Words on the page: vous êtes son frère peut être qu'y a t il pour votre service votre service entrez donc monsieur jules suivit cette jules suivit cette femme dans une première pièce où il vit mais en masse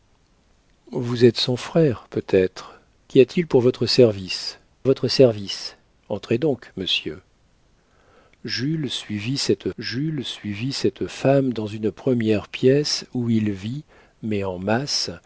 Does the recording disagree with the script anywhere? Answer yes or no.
no